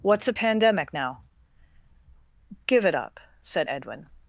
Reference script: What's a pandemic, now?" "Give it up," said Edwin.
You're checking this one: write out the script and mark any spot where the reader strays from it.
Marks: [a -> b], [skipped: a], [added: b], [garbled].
What's a pandemic, now?" "Give it up," said Edwin.